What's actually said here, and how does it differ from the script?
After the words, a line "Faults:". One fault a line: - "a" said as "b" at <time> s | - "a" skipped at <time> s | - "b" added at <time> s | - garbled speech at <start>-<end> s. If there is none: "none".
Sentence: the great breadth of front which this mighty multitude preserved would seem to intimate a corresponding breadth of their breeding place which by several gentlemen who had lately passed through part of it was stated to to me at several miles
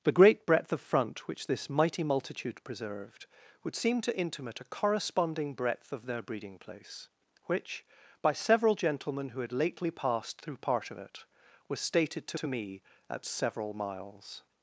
the great breadth of front which this mighty multitude preserved would seem to intimate a corresponding breadth of their breeding place which by several gentlemen who had lately passed through part of it was stated to to me at several miles
Faults:
none